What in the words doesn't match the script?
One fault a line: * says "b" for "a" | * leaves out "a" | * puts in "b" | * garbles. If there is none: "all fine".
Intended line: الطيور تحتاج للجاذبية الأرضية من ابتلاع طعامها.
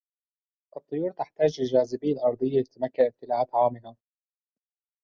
* puts in "لتتمكن"